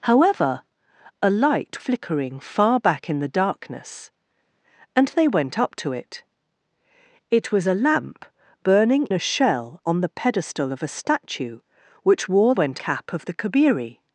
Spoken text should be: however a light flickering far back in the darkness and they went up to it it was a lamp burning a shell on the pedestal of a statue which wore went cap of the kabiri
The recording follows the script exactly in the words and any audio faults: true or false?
true